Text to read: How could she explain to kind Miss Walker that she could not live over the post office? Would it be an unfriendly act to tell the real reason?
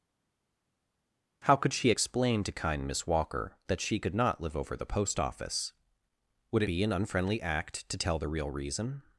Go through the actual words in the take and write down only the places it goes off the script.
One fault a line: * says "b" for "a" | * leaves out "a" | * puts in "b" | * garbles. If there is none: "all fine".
all fine